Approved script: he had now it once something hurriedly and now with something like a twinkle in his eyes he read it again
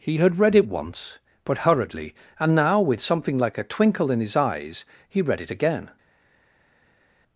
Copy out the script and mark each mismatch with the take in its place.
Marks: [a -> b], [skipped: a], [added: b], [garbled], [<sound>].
he had [now -> read] it once [something -> but] hurriedly and now with something like a twinkle in his eyes he read it again